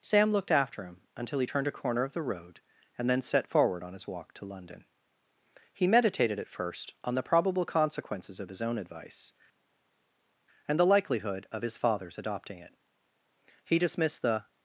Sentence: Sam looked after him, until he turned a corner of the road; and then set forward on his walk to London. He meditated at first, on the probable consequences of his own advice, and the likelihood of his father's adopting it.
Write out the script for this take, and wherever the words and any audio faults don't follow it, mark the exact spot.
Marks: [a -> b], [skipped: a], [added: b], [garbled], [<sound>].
Sam looked after him, until he turned a corner of the road; and then set forward on his walk to London. He meditated at first, on the probable consequences of his own advice, and the likelihood of his father's adopting it. [added: He dismissed the]